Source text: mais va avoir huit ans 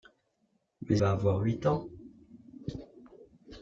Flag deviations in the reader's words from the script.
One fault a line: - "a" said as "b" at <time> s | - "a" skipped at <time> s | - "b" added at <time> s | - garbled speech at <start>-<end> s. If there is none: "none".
none